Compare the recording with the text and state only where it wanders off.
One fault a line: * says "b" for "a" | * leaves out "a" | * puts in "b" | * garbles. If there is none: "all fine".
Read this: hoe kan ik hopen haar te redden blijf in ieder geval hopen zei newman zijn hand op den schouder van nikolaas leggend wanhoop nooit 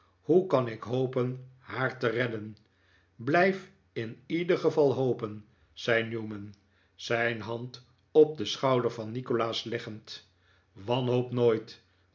all fine